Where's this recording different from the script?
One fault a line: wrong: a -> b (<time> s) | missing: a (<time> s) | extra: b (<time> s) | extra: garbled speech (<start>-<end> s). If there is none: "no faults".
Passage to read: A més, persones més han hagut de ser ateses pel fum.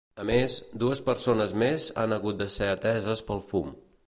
extra: dues (0.8 s)